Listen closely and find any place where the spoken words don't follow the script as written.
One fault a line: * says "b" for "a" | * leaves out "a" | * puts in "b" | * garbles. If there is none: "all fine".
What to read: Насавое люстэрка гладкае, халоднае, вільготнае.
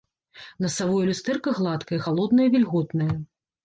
all fine